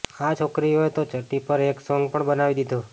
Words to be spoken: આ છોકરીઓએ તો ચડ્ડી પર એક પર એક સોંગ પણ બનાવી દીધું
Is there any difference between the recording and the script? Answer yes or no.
yes